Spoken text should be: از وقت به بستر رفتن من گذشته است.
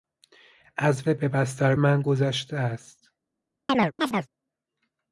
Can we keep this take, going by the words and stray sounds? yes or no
no